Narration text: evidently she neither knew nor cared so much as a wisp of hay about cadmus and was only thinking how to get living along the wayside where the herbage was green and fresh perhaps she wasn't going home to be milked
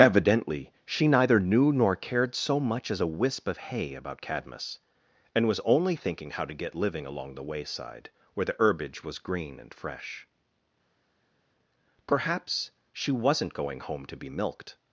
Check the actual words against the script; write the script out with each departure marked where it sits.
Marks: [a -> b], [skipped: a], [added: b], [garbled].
evidently she neither knew nor cared so much as a wisp of hay about cadmus and was only thinking how to get living along the wayside where the herbage was green and fresh perhaps she wasn't going home to be milked